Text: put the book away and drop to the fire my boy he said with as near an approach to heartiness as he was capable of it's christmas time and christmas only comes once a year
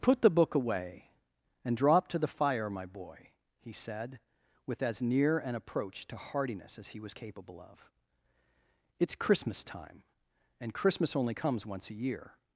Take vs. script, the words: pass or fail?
pass